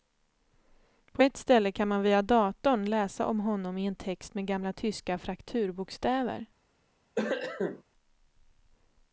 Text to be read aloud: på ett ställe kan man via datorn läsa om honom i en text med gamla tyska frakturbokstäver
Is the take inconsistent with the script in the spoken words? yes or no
no